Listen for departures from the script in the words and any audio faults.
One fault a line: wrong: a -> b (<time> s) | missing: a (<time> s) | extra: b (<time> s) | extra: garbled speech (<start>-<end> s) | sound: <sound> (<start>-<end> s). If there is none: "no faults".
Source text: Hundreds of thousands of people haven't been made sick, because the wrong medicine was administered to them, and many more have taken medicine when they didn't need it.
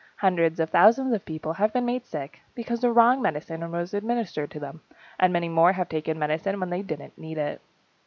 wrong: haven't -> have (1.5 s)